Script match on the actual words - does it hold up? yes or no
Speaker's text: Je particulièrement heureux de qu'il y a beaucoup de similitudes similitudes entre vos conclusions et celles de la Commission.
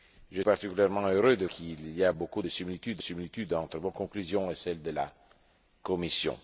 yes